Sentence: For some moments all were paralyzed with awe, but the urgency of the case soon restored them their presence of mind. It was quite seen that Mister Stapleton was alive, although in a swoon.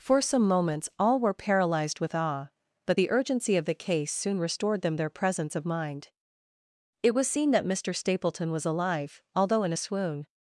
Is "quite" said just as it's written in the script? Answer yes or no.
no